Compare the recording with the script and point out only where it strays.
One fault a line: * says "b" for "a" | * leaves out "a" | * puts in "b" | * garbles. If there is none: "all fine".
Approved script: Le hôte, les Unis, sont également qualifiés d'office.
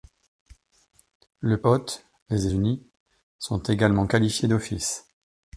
all fine